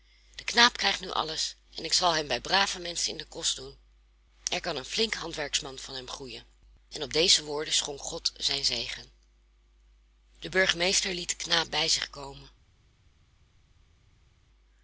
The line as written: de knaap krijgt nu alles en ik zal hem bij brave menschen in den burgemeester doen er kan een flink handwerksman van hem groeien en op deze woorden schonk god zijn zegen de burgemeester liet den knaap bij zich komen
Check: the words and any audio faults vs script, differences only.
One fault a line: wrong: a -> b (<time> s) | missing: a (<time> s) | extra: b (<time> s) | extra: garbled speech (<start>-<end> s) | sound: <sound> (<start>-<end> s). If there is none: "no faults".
wrong: burgemeester -> kost (3.3 s)